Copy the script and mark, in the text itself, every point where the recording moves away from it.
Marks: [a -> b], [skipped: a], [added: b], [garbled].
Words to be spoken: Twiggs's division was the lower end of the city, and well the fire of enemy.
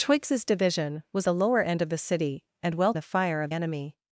Twiggs's division was the lower end of the city, and well the fire of enemy.